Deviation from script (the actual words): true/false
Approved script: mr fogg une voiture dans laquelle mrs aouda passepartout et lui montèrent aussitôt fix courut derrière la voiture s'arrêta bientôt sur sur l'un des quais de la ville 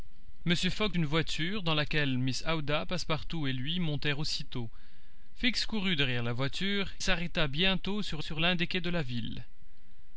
false